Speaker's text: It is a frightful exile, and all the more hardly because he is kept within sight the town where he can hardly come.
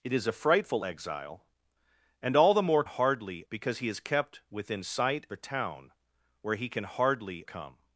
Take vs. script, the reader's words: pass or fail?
pass